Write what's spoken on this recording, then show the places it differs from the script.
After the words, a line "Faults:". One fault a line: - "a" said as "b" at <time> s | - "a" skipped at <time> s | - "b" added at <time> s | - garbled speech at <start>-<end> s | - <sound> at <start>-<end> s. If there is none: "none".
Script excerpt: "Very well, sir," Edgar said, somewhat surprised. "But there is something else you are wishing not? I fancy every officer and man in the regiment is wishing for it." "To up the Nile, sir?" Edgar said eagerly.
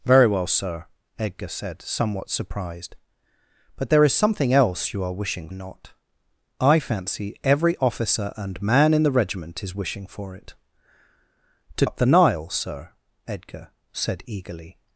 "Very well, sir," Edgar said, somewhat surprised. "But there is something else you are wishing not? I fancy every officer and man in the regiment is wishing for it." "To up the Nile, sir?" Edgar said eagerly.
Faults:
none